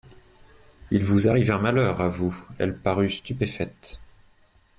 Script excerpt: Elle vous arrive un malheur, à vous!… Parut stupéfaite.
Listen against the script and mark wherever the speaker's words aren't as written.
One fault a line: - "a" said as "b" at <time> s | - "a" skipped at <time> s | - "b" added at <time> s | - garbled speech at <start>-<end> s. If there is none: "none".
- "Elle" said as "Il" at 0.9 s
- "Elle" added at 2.6 s